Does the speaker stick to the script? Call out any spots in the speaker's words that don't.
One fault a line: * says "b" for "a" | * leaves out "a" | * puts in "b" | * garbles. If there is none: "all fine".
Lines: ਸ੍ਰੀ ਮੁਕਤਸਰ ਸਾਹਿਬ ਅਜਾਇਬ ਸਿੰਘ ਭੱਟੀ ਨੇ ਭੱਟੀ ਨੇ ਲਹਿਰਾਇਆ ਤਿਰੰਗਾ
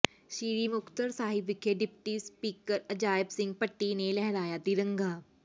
* puts in "ਵਿਖੇ ਡਿਪਟੀ ਸਪੀਕਰ"
* leaves out "ਭੱਟੀ ਨੇ"